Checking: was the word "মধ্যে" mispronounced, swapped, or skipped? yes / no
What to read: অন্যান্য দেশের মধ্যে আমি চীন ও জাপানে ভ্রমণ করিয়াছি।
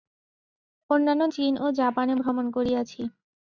yes